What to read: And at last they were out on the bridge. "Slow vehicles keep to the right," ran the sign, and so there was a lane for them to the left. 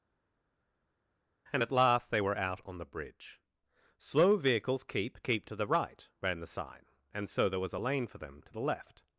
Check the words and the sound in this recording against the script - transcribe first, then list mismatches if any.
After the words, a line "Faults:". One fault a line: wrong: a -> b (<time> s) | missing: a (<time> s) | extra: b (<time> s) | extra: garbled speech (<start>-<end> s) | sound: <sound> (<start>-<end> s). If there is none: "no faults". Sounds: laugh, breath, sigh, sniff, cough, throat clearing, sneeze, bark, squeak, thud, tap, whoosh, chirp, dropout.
And at last they were out on the bridge. "Slow vehicles keep keep to the right," ran the sign, and so there was a lane for them to the left.
Faults:
extra: keep (5.2 s)